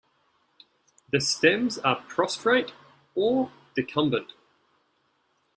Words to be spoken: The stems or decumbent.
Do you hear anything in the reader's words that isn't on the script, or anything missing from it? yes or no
yes